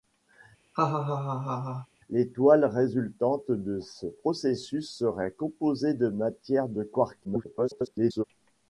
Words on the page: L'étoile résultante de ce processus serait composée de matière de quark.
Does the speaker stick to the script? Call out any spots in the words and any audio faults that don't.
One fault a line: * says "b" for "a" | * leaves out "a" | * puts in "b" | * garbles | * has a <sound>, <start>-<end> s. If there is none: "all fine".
* has a laugh, 0.7-1.9 s
* garbles